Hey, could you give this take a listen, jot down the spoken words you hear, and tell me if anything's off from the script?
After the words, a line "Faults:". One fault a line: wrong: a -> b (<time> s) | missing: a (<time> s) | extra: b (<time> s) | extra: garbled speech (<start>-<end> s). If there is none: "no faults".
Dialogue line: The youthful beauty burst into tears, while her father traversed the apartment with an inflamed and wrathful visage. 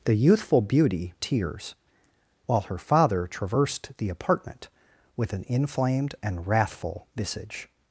The youthful beauty tears, while her father traversed the apartment with an inflamed and wrathful visage.
Faults:
missing: burst into (1.1 s)